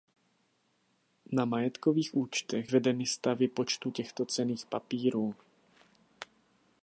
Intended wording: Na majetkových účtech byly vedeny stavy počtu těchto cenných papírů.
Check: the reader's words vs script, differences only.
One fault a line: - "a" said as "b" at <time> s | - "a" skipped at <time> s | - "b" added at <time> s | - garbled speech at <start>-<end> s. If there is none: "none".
- "byly" skipped at 2.7 s